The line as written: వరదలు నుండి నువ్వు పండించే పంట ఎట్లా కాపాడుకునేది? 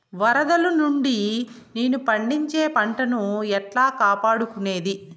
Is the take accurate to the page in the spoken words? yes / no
no